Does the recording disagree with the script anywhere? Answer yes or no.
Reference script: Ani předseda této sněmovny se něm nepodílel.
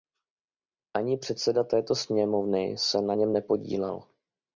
yes